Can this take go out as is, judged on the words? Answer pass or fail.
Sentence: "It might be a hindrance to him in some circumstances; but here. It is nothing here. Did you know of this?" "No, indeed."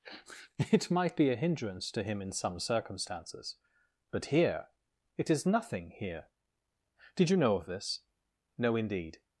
pass